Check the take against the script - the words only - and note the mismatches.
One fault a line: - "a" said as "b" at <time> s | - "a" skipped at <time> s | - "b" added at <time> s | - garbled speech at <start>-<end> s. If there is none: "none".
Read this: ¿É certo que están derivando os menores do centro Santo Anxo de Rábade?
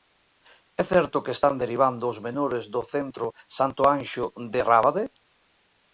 none